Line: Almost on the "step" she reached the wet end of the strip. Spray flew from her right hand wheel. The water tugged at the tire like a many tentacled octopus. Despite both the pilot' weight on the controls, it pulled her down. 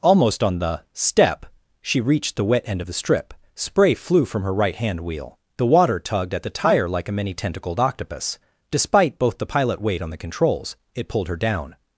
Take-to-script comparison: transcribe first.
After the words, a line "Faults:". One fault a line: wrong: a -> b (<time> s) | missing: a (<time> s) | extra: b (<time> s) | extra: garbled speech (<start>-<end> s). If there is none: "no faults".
Almost on the "step" she reached the wet end of the strip. Spray flew from her right hand wheel. The water tugged at the tire like a many tentacled octopus. Despite both the pilot' weight on the controls, it pulled her down.
Faults:
no faults